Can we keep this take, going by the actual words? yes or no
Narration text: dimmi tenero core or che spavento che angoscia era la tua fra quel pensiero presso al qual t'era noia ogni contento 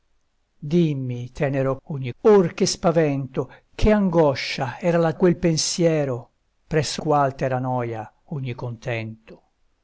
no